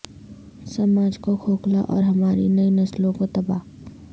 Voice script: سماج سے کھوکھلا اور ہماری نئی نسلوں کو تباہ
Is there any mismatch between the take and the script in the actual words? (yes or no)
yes